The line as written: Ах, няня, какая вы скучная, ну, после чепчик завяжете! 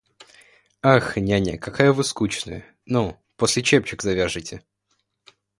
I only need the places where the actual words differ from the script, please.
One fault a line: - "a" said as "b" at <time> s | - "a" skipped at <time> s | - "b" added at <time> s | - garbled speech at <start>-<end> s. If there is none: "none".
none